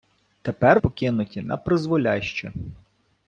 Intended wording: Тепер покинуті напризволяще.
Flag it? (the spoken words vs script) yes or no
no